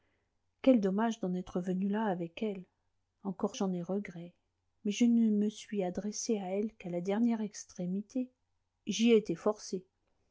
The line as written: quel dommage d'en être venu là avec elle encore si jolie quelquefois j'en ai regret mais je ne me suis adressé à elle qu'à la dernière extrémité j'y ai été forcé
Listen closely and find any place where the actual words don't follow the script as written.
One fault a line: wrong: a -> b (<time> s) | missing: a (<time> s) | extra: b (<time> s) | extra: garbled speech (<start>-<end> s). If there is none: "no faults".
missing: si jolie quelquefois (3.6 s)